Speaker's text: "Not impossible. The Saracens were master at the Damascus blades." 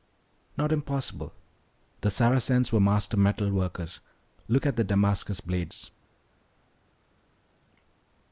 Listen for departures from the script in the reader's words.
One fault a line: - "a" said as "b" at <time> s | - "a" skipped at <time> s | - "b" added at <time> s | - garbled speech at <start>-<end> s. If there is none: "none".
- "metal workers Look" added at 3.2 s